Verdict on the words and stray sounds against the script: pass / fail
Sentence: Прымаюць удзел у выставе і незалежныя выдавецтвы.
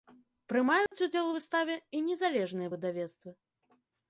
fail